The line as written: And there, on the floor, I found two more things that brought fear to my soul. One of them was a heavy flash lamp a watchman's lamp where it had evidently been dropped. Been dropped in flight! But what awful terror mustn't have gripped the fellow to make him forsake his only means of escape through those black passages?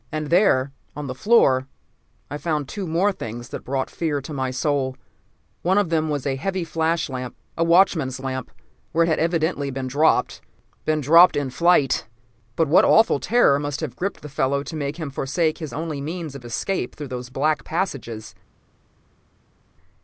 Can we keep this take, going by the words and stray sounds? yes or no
no